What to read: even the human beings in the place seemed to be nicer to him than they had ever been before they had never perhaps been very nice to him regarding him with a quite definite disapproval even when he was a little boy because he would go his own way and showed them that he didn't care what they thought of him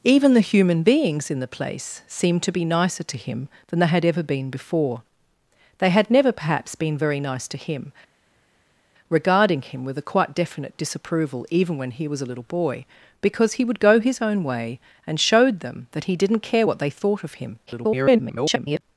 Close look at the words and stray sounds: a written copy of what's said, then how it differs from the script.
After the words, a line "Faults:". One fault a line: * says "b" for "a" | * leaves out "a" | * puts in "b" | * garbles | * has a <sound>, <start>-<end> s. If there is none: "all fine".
even the human beings in the place seemed to be nicer to him than they had ever been before they had never perhaps been very nice to him regarding him with a quite definite disapproval even when he was a little boy because he would go his own way and showed them that he didn't care what they thought of him [garbled]
Faults:
* garbles